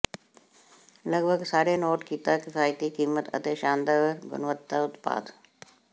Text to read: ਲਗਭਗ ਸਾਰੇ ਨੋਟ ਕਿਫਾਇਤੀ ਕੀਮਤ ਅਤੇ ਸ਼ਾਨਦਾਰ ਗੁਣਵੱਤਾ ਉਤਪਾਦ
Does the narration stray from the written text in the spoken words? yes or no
yes